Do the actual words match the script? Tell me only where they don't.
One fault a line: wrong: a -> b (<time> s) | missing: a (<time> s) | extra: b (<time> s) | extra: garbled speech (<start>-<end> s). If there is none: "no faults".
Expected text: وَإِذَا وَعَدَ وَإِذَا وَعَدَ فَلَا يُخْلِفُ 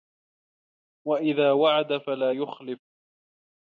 missing: وَإِذَا وَعَدَ (2.0 s)